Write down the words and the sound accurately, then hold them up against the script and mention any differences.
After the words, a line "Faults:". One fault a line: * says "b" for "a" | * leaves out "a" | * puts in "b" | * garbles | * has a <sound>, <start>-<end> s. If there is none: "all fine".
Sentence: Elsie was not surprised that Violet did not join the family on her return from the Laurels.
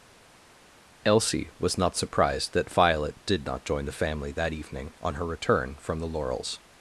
Elsie was not surprised that Violet did not join the family that evening on her return from the Laurels.
Faults:
* puts in "that evening"